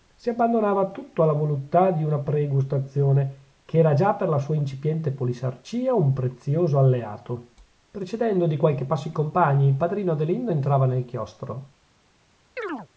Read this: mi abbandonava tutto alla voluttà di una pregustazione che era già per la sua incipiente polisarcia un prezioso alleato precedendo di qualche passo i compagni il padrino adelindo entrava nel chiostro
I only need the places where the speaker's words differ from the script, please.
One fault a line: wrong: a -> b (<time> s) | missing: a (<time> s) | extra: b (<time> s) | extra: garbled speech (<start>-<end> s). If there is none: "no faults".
wrong: mi -> si (0.1 s)